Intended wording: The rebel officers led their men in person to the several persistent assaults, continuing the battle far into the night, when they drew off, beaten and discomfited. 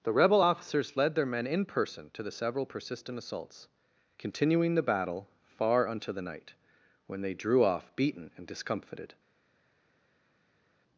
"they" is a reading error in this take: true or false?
false